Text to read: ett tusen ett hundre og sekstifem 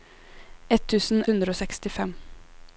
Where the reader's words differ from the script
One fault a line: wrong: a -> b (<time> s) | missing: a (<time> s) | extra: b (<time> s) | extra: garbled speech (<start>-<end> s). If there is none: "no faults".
missing: ett (1.2 s)